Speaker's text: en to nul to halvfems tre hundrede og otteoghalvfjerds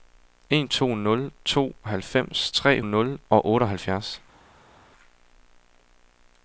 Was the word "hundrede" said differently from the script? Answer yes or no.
yes